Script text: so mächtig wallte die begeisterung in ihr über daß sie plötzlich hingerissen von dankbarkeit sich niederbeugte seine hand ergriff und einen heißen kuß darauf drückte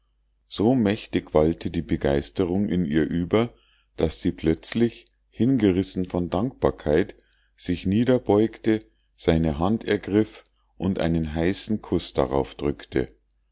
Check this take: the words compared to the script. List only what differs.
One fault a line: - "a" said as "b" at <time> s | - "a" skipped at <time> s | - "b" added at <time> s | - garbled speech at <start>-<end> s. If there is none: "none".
none